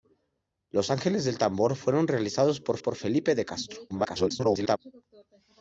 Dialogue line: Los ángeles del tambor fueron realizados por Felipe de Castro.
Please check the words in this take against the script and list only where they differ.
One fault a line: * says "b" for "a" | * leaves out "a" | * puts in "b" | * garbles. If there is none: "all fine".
* puts in "por"
* garbles